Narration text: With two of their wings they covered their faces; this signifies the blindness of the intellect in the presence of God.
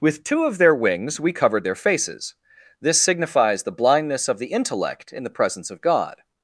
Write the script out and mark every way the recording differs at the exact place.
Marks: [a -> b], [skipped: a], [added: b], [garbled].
With two of their wings [they -> we] covered their faces; this signifies the blindness of the intellect in the presence of God.